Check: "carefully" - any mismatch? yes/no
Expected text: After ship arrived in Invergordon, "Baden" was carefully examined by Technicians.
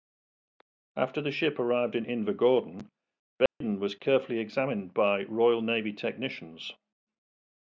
no